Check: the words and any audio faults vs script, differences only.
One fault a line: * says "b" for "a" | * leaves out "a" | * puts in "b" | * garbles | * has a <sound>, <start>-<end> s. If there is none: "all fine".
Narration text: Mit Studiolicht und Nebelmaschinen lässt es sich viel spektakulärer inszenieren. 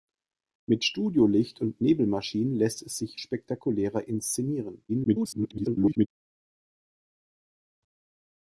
* leaves out "viel"
* garbles